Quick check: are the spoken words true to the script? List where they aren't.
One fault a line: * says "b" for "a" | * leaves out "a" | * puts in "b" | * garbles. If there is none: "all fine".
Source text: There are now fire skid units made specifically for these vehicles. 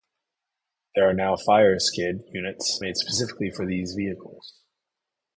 all fine